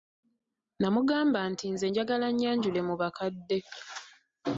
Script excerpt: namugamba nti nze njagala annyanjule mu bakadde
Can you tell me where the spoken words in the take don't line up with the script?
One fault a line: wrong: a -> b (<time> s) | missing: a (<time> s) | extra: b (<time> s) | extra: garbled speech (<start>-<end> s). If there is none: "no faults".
no faults